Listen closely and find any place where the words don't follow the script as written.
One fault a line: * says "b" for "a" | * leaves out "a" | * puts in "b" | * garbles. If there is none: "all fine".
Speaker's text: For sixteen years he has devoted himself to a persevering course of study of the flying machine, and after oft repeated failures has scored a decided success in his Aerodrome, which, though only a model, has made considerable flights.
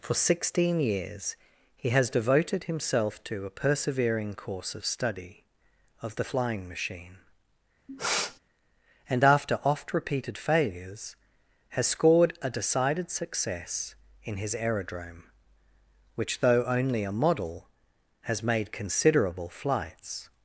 all fine